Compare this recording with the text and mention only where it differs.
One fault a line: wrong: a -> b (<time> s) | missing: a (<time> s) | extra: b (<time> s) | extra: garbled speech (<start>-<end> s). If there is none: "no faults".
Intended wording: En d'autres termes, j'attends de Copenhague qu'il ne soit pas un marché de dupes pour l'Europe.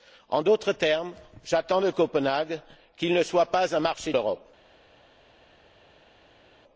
missing: de dupes pour (4.1 s)